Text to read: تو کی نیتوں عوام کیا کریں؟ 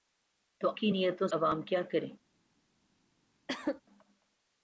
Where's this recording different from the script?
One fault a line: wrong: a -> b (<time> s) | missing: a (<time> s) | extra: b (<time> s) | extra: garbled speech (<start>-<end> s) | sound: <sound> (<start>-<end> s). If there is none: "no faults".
sound: cough (3.5-3.8 s)